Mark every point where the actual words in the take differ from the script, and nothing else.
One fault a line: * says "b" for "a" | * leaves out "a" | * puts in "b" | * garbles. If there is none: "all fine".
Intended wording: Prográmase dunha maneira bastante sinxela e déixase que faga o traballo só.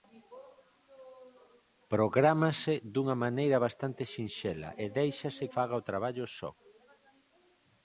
* leaves out "que"